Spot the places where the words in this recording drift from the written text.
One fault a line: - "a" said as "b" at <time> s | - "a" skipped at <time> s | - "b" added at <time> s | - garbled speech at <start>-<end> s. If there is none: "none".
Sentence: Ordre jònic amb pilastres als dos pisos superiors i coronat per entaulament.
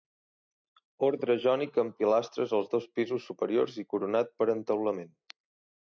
none